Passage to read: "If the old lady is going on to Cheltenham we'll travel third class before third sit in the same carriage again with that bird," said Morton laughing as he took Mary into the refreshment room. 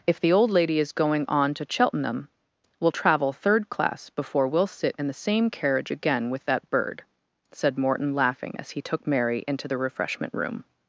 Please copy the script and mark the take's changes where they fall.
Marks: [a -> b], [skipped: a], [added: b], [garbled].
"If the old lady is going on to Cheltenham we'll travel third class before [third -> we'll] sit in the same carriage again with that bird," said Morton laughing as he took Mary into the refreshment room.